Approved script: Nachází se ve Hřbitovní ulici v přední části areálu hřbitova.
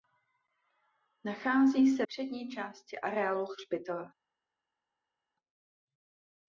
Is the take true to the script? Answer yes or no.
no